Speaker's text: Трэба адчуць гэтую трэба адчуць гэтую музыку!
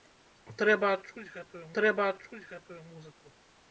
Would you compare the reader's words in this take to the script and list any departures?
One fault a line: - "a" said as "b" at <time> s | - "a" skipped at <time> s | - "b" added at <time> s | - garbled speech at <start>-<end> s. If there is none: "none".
none